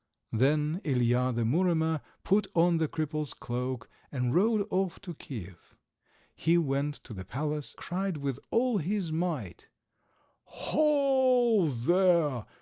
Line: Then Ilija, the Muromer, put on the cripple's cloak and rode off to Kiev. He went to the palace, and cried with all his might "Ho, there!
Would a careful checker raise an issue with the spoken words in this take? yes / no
yes